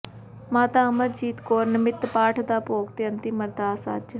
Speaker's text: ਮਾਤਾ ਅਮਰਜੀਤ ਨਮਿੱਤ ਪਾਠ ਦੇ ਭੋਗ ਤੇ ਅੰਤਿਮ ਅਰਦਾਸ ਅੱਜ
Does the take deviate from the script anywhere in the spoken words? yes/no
yes